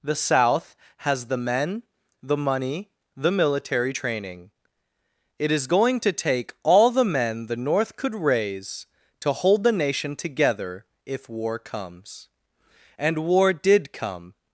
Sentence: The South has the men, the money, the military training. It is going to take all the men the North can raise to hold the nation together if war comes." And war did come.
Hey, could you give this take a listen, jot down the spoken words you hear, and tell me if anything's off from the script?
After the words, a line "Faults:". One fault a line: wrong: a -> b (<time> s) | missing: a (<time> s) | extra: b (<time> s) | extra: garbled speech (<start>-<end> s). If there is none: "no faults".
The South has the men, the money, the military training. It is going to take all the men the North could raise to hold the nation together if war comes." And war did come.
Faults:
wrong: can -> could (8.0 s)